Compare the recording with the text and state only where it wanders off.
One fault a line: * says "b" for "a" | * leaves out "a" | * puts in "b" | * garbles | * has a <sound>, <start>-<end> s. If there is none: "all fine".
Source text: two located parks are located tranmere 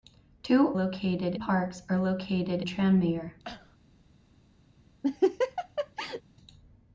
* has a cough, 3.4-3.8 s
* has a laugh, 5.0-6.2 s